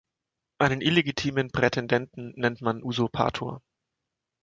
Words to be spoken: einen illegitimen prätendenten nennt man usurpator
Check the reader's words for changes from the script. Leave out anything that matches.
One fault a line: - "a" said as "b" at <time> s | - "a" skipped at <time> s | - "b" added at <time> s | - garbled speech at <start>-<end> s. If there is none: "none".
none